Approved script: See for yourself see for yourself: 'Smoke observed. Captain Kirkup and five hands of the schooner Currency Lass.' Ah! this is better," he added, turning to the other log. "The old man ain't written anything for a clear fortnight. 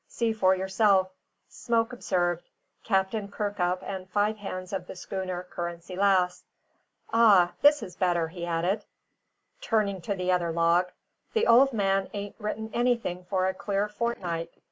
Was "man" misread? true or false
false